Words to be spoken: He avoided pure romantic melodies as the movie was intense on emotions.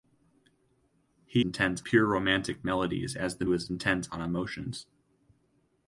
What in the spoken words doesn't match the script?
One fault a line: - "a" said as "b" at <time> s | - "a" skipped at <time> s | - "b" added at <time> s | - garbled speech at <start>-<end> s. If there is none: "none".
- "avoided" said as "intense" at 1.4 s
- "movie" skipped at 3.4 s